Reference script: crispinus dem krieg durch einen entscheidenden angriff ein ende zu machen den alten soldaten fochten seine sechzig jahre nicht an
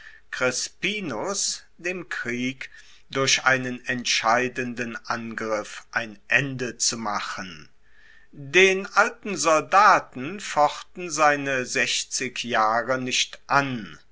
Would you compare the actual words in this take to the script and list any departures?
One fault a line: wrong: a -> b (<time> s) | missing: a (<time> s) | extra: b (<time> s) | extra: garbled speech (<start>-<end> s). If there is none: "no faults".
no faults